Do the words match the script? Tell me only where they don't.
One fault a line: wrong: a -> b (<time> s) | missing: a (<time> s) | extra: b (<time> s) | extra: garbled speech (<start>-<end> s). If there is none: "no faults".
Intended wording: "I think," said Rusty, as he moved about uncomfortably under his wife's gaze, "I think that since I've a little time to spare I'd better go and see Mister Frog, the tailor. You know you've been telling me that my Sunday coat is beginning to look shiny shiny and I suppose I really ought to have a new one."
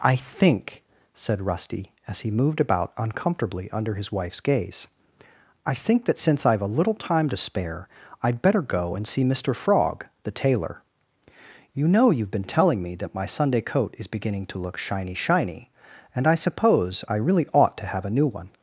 no faults